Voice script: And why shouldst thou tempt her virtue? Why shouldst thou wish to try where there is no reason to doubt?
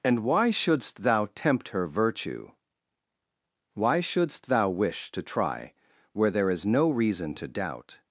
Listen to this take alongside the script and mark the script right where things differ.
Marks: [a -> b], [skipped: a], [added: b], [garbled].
And why shouldst thou tempt her virtue? Why shouldst thou wish to try where there is no reason to doubt?